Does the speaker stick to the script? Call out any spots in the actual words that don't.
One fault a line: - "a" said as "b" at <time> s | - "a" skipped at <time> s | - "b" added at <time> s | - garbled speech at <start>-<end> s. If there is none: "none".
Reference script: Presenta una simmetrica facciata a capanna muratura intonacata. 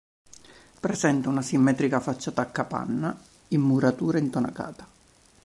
- "in" added at 3.5 s